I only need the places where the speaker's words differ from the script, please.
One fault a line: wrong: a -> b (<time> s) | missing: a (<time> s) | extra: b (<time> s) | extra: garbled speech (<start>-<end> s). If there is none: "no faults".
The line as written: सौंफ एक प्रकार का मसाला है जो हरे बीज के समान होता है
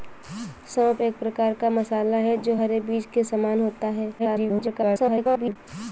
extra: garbled speech (4.2-5.6 s)